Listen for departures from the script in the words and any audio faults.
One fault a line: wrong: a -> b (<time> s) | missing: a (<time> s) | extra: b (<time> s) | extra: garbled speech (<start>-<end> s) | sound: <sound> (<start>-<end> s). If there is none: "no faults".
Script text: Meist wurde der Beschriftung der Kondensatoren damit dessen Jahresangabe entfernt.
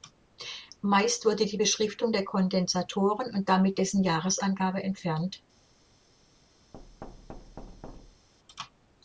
wrong: der -> die (1.4 s)
extra: und (3.3 s)
sound: thud (6.7-8.3 s)